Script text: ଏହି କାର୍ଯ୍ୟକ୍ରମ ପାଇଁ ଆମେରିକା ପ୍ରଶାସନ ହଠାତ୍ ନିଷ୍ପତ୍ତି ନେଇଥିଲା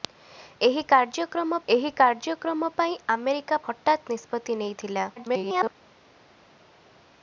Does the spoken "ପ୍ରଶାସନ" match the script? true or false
false